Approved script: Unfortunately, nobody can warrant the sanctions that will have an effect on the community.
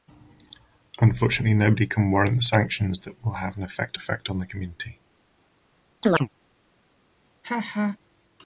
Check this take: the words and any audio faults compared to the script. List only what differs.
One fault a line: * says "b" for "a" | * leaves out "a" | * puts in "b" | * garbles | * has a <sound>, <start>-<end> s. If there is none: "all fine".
* puts in "effect"
* has a chirp, 6.0-6.3 s
* has a laugh, 7.4-8.0 s